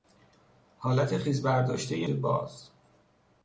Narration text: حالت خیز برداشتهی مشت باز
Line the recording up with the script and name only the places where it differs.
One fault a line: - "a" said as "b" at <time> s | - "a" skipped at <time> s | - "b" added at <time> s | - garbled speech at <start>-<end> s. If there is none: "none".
- "مشت" skipped at 2.1 s